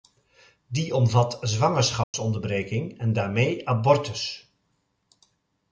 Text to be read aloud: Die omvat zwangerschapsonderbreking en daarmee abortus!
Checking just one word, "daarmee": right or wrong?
right